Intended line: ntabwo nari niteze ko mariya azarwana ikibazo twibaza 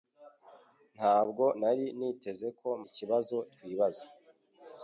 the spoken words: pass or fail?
fail